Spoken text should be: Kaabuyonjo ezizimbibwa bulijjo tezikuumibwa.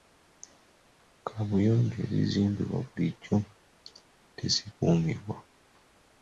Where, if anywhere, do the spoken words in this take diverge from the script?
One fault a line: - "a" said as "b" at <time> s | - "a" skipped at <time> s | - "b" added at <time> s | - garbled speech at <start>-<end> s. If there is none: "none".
none